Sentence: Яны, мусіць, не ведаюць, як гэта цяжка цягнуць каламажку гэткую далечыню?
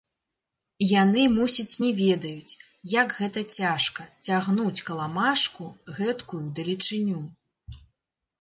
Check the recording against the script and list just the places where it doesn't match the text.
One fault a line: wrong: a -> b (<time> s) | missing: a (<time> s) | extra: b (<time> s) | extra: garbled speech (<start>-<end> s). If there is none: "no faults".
no faults